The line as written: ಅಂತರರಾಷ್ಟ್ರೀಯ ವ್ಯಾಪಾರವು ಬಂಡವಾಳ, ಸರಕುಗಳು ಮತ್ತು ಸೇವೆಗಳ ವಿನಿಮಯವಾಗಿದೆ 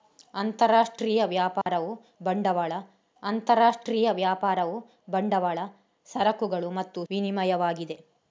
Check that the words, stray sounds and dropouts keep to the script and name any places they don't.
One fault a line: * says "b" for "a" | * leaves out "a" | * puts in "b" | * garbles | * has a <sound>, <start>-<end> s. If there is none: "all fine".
* has a dropout, 1.6-1.7 s
* puts in "ಅಂತರರಾಷ್ಟ್ರೀಯ ವ್ಯಾಪಾರವು ಬಂಡವಾಳ"
* leaves out "ಸೇವೆಗಳ"